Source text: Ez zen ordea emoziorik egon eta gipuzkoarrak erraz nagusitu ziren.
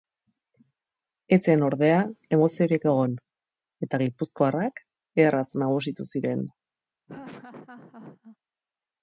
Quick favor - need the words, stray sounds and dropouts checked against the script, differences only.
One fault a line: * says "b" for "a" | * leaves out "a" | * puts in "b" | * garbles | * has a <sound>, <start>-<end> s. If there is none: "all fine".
* has a laugh, 7.1-8.4 s